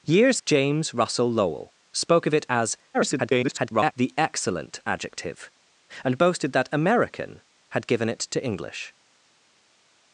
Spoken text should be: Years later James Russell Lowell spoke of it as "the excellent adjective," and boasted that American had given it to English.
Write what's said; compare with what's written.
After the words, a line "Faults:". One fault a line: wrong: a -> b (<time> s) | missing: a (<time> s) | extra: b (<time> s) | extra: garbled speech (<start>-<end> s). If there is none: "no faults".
Years James Russell Lowell spoke of it as [garbled] "the excellent adjective," and boasted that American had given it to English.
Faults:
missing: later (0.4 s)
extra: garbled speech (2.9-3.9 s)